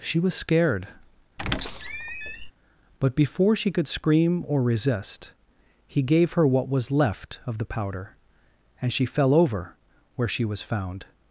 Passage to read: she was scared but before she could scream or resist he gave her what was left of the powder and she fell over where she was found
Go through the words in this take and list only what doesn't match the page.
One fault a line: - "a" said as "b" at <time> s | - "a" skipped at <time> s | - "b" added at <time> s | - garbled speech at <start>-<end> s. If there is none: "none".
none